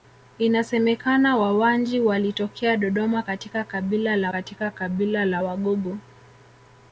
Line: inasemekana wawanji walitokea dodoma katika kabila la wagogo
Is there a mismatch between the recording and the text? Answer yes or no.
yes